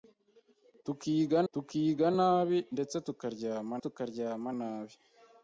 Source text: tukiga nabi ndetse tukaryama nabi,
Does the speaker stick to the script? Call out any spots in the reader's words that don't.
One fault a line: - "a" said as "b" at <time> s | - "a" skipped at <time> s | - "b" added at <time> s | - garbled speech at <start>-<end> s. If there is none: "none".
- "tukiga" added at 1.5 s
- "tukaryama" added at 3.8 s